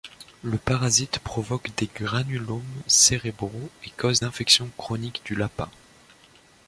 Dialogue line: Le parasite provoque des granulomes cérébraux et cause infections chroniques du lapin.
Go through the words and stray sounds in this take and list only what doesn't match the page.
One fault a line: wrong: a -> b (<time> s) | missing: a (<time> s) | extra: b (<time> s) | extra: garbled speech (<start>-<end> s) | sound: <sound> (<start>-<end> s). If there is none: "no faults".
no faults